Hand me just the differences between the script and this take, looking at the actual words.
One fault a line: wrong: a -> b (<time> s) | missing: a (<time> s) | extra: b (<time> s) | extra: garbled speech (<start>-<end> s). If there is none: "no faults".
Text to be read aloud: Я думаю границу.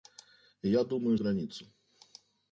no faults